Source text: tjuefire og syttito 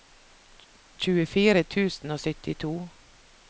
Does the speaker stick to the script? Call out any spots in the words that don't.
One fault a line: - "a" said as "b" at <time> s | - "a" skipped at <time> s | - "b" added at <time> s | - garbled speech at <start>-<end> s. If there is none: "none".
- "tusen" added at 1.8 s